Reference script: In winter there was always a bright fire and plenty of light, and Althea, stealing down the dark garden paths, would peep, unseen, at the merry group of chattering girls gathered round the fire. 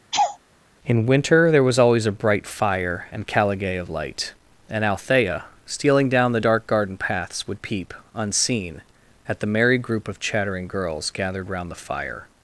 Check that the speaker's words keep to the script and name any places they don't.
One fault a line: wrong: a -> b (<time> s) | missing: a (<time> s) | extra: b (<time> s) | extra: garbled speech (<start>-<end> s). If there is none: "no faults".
wrong: plenty -> caligae (3.3 s)